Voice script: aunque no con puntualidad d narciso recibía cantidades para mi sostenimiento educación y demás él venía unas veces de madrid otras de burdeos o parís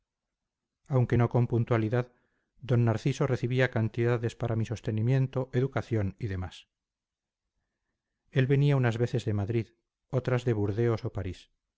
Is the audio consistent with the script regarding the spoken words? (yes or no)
yes